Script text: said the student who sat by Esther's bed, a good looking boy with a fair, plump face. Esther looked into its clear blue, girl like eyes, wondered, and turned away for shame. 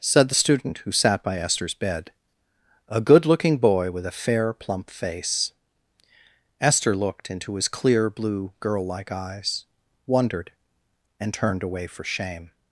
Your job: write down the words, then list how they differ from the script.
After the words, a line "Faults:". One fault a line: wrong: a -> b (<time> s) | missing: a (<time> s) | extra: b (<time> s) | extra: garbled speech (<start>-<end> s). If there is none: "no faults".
said the student who sat by Esther's bed, a good looking boy with a fair, plump face. Esther looked into his clear blue, girl like eyes, wondered, and turned away for shame.
Faults:
wrong: its -> his (7.6 s)